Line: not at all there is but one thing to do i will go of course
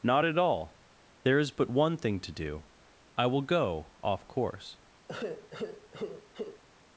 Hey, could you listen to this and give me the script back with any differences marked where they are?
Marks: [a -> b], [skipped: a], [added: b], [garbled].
not at all there is but one thing to do i will go [of -> off] course